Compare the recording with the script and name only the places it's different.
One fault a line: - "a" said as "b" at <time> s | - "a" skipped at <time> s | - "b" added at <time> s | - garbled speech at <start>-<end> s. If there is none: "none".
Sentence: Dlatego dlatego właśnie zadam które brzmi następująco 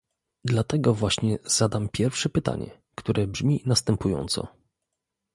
- "dlatego" skipped at 0.9 s
- "pierwsze pytanie" added at 1.9 s